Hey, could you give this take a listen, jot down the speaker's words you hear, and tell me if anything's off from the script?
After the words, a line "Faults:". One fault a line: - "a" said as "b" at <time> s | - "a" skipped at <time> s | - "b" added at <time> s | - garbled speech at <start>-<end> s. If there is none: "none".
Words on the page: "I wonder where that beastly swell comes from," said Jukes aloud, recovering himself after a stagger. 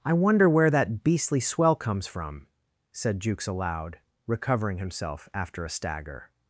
"I wonder where that beastly swell comes from," said Jukes aloud, recovering himself after a stagger.
Faults:
none